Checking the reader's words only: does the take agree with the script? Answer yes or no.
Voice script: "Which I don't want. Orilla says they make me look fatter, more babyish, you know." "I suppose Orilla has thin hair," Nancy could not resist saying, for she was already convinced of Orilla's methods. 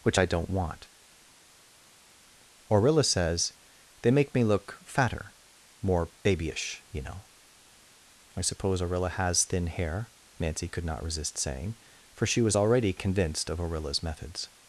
yes